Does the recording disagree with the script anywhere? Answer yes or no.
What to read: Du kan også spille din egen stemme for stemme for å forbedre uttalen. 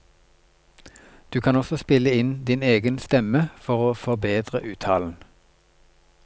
yes